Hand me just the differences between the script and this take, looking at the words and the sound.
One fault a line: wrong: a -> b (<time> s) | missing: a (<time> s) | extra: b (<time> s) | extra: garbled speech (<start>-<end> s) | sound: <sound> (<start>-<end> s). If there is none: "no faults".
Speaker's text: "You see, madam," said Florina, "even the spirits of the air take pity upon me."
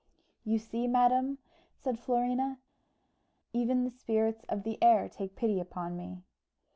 no faults